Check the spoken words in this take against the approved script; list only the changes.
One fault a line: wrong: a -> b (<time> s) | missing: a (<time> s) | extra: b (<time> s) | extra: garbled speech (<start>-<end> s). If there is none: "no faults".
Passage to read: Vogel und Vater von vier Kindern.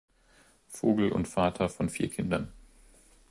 no faults